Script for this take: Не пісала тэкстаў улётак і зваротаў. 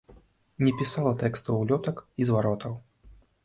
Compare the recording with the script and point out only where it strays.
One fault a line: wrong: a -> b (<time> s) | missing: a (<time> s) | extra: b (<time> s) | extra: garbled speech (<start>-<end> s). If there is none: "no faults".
no faults